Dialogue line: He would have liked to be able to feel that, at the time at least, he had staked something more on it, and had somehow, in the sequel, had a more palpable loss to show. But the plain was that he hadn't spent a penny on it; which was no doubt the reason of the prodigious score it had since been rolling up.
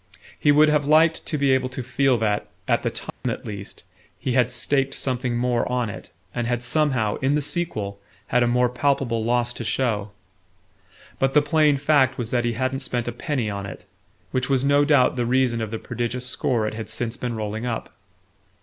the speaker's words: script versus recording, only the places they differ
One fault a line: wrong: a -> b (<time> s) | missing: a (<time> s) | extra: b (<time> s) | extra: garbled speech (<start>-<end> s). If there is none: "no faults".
extra: fact (11.8 s)